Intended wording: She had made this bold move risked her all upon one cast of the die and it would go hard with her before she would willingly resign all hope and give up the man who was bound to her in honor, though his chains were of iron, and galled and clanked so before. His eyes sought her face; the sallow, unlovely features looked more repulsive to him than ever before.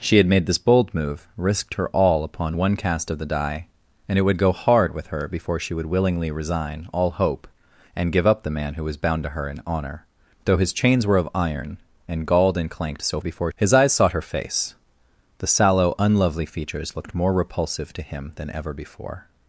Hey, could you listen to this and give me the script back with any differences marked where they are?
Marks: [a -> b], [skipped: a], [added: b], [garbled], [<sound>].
She had made this bold move risked her all upon one cast of the die and it would go hard with her before she would willingly resign all hope and give up the man who was bound to her in honor, though his chains were of iron, and galled and clanked so before. His eyes sought her face; the sallow, unlovely features looked more repulsive to him than ever before.